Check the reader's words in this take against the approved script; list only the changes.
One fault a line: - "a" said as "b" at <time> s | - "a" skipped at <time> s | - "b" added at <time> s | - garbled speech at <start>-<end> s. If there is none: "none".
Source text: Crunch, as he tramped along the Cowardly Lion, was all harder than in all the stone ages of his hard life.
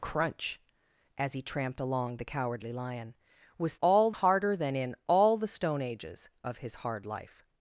none